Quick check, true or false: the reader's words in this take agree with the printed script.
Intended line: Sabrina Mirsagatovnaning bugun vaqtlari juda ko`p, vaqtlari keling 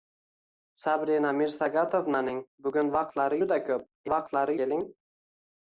true